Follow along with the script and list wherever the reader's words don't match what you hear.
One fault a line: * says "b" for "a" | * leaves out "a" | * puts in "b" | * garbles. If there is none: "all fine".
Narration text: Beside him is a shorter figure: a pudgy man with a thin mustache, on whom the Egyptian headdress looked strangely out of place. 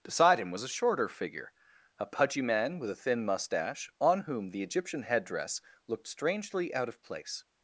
* says "was" for "is"